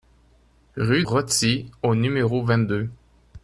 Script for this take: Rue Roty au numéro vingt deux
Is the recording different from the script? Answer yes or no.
no